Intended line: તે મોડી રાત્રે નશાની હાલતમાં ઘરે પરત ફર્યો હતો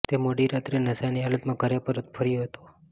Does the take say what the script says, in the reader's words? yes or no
yes